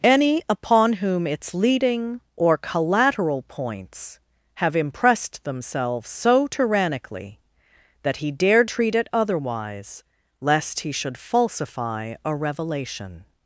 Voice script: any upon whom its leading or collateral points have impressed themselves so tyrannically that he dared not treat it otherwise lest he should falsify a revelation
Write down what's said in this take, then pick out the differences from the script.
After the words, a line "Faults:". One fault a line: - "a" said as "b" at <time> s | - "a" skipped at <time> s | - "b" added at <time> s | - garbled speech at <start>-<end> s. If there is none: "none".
any upon whom its leading or collateral points have impressed themselves so tyrannically that he dared treat it otherwise lest he should falsify a revelation
Faults:
- "not" skipped at 8.7 s